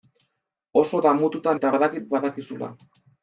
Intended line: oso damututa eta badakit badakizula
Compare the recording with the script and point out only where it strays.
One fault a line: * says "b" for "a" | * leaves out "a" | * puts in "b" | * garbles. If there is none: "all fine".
all fine